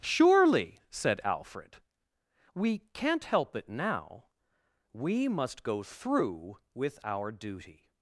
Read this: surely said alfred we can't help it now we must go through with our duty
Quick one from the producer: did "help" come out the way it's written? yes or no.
yes